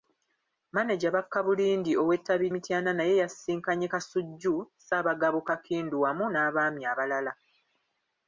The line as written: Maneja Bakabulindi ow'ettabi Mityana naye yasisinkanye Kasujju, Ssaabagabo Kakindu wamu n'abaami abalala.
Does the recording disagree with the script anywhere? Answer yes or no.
no